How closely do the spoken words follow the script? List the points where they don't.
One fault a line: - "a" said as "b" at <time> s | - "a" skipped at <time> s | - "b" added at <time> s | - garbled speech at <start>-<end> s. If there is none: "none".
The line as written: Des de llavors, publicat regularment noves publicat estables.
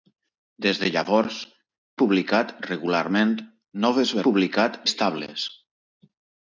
none